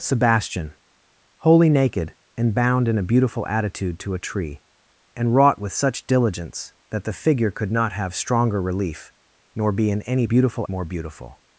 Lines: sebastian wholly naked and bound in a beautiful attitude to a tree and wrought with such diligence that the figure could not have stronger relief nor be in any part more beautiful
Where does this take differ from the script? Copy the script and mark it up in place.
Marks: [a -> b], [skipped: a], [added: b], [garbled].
sebastian wholly naked and bound in a beautiful attitude to a tree and wrought with such diligence that the figure could not have stronger relief nor be in any [part -> beautiful] more beautiful